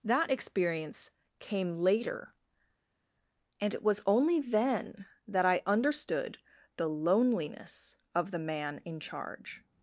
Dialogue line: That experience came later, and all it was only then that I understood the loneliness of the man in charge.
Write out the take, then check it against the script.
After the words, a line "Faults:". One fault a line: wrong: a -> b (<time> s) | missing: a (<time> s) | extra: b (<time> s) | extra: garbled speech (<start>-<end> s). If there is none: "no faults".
That experience came later, and it was only then that I understood the loneliness of the man in charge.
Faults:
missing: all (3.7 s)